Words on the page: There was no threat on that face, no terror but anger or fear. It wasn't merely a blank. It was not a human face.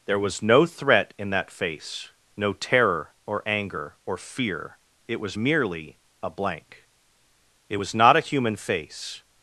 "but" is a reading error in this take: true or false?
true